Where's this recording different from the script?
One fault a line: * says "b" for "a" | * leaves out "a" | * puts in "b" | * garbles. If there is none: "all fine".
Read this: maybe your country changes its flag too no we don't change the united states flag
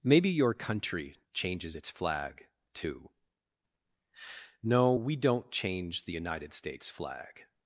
all fine